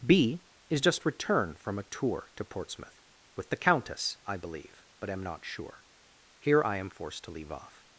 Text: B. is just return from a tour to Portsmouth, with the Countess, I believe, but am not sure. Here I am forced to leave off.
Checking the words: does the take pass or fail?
pass